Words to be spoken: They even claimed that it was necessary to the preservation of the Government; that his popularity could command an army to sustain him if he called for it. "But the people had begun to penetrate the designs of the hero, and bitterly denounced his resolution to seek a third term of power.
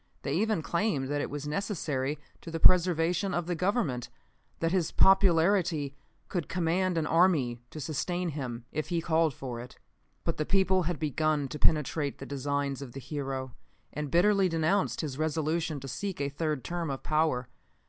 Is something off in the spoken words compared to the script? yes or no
no